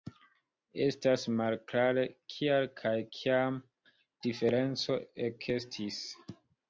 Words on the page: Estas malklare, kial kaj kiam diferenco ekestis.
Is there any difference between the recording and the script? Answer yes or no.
no